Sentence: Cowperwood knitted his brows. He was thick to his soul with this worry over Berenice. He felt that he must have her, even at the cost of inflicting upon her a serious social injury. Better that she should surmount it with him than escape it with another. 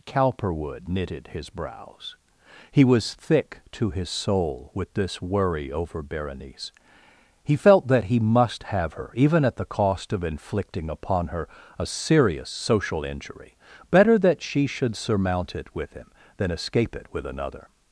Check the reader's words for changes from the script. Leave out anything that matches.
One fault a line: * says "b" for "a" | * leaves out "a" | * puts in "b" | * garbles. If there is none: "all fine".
all fine